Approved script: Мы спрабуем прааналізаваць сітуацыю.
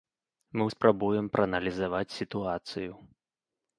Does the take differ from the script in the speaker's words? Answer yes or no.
no